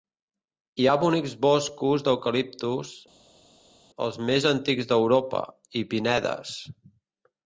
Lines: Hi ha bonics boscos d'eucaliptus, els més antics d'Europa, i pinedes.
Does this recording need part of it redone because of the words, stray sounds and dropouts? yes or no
no